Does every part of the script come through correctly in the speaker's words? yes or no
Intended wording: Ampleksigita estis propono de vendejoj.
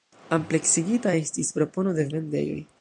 yes